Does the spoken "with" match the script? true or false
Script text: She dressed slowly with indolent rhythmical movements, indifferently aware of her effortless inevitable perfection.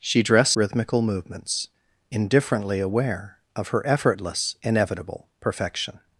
false